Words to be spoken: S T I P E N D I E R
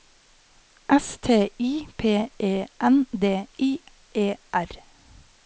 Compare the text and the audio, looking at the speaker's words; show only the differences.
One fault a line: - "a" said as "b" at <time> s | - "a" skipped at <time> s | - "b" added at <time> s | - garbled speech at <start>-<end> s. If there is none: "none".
none